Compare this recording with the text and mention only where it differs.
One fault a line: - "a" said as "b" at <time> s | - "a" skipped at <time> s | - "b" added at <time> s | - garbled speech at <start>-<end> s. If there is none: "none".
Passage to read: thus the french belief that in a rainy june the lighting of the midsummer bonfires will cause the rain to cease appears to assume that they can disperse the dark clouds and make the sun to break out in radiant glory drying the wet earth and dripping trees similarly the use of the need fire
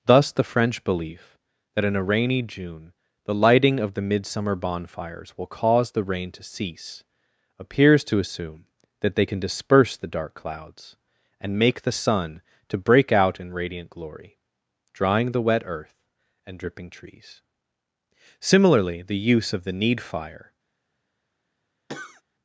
none